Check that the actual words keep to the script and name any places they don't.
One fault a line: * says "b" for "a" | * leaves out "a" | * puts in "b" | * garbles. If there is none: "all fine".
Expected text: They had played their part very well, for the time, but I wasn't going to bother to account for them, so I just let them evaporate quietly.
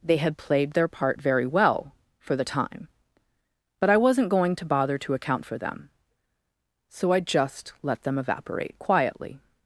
all fine